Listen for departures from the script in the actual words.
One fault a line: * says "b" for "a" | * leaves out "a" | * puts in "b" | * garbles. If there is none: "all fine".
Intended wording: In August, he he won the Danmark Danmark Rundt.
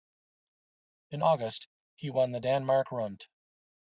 * leaves out "he"
* leaves out "Danmark"